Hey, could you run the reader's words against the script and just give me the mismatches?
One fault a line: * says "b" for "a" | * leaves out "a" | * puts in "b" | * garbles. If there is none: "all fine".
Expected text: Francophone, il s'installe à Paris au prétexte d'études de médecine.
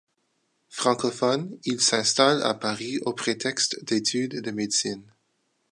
all fine